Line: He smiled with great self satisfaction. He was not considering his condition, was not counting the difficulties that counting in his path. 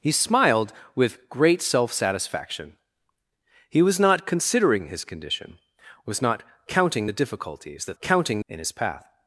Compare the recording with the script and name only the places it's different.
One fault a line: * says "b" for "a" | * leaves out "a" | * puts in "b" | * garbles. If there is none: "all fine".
all fine